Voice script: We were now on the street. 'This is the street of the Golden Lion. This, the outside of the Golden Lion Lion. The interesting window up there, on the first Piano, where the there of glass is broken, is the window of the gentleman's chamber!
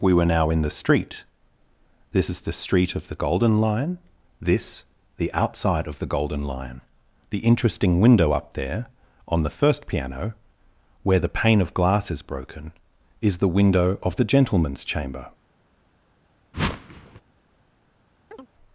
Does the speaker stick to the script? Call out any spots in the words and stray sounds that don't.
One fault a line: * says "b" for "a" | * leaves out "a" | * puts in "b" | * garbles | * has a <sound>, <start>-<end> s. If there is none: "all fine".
* says "in" for "on"
* leaves out "Lion"
* says "pane" for "there"
* has a whoosh, 16.5-17.2 s
* has a chirp, 18.3-18.5 s